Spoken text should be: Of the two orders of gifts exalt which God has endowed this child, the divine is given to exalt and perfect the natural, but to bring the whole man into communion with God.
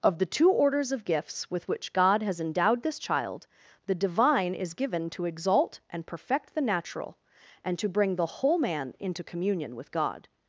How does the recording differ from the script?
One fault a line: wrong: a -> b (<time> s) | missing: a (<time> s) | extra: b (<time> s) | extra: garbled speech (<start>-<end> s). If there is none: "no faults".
wrong: exalt -> with (1.5 s)
wrong: but -> and (7.7 s)